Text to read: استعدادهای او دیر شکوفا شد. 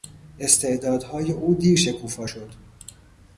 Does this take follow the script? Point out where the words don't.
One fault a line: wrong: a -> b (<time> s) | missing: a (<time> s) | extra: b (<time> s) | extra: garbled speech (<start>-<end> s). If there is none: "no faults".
no faults